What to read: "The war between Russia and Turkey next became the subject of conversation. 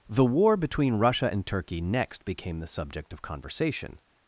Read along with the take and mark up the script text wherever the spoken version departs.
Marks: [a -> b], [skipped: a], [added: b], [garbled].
"The war between Russia and Turkey next became the subject of conversation.